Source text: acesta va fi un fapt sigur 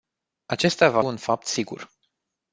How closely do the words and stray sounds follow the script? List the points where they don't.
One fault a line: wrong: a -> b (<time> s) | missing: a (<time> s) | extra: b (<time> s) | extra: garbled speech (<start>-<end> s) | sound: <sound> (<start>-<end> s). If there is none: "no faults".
missing: fi (1.0 s)